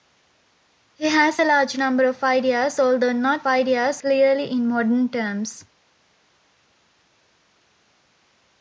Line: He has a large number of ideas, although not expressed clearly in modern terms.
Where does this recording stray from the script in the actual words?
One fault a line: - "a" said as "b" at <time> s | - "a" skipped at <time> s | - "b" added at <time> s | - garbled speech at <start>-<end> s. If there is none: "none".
- "expressed" said as "ideas" at 3.5 s